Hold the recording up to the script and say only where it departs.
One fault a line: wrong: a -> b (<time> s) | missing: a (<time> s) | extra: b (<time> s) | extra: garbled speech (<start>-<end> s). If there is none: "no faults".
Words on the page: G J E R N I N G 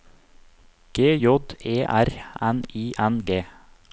no faults